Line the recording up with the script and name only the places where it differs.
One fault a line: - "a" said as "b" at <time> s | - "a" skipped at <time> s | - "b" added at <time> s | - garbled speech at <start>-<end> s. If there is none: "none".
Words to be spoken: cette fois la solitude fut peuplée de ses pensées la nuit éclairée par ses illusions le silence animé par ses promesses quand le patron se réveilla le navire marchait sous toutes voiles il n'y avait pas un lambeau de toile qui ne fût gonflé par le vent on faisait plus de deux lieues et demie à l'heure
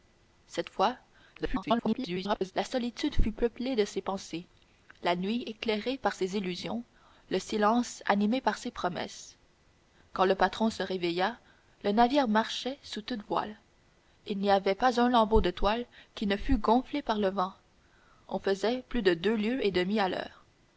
- garbled speech at 1.3-2.5 s